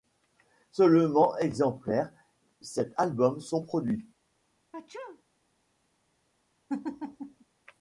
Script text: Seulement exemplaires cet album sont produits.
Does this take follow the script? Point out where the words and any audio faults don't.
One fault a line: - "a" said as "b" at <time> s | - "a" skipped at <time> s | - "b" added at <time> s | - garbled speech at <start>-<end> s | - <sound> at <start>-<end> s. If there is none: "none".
- sneeze at 4.7-5.2 s
- laugh at 6.7-7.4 s